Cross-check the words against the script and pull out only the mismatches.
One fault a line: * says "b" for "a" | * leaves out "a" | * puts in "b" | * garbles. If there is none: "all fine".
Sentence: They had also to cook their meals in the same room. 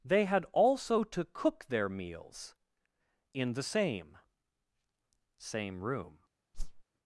* puts in "same"